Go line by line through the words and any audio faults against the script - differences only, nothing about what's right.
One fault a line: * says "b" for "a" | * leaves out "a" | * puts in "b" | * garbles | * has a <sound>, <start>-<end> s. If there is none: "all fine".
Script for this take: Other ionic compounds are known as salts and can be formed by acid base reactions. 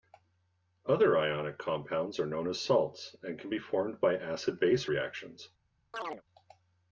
* has a chirp, 5.9-6.2 s